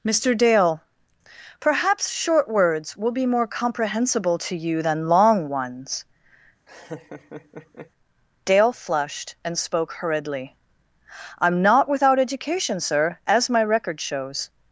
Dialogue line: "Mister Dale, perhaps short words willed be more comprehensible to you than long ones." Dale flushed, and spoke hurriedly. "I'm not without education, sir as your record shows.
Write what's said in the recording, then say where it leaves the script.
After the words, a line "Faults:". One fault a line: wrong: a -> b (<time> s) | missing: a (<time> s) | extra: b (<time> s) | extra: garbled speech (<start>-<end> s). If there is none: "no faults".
"Mister Dale, perhaps short words will be more comprehensible to you than long ones." Dale flushed, and spoke hurriedly. "I'm not without education, sir as my record shows.
Faults:
wrong: willed -> will (3.0 s)
wrong: your -> my (13.5 s)